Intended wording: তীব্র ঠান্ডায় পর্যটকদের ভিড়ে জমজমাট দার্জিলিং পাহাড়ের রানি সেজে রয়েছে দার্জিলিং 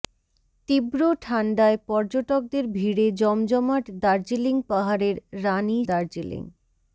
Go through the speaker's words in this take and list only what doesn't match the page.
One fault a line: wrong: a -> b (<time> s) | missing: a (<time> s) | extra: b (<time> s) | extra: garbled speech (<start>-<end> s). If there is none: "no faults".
missing: সেজে রয়েছে (5.8 s)